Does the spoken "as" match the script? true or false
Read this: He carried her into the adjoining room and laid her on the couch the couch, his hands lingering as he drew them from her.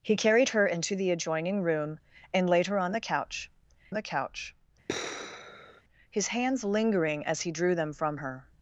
true